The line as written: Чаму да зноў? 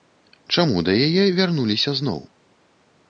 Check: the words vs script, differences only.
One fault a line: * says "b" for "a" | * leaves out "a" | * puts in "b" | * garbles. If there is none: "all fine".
* puts in "яе вярнуліся"